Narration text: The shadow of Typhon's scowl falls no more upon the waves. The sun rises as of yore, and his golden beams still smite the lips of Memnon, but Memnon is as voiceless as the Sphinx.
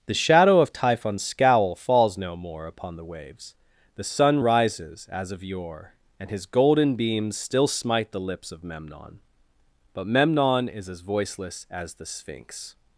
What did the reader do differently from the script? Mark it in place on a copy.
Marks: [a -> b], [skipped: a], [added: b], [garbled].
The shadow of Typhon's scowl falls no more upon the waves. The sun rises as of yore, and his golden beams still smite the lips of Memnon, but Memnon is as voiceless as the Sphinx.